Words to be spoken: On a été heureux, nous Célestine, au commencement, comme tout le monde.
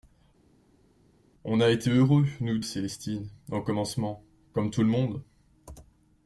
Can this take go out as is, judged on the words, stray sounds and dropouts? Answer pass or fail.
pass